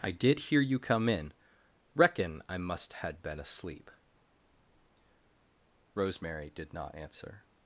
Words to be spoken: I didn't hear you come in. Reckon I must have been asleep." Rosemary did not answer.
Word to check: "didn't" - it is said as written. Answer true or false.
false